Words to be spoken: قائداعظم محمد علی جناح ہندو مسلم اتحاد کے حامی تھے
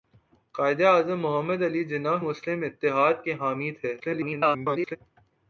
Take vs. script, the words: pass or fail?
fail